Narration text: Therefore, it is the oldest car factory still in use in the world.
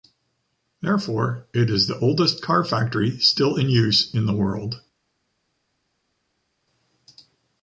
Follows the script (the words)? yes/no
yes